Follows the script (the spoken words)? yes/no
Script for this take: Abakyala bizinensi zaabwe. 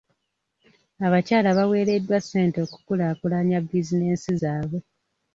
no